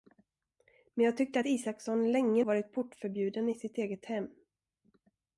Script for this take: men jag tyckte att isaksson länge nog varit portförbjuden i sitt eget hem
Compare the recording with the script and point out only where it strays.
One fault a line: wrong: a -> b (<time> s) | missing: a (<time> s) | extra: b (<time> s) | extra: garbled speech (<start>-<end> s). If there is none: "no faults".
missing: nog (2.4 s)